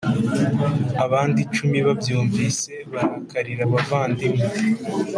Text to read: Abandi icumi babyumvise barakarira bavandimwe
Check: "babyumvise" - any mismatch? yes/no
no